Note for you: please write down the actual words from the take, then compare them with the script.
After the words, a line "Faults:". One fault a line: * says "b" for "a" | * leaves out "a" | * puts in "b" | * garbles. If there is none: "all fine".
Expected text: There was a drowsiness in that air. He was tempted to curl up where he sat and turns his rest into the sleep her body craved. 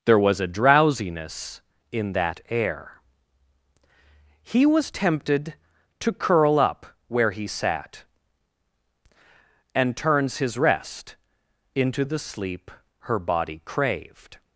There was a drowsiness in that air. He was tempted to curl up where he sat and turns his rest into the sleep her body craved.
Faults:
all fine